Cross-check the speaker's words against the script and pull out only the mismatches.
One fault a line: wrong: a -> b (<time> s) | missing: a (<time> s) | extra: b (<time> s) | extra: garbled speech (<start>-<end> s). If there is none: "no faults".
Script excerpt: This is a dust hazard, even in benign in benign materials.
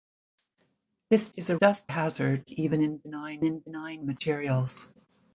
no faults